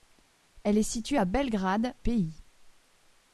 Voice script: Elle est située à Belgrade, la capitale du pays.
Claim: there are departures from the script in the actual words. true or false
true